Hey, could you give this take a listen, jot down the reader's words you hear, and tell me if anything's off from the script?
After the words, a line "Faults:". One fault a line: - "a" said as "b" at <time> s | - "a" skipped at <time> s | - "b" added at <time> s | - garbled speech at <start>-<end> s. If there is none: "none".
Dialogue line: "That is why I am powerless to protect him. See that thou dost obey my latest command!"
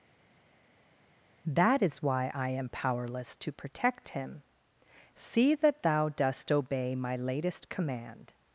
"That is why I am powerless to protect him. See that thou dost obey my latest command!"
Faults:
none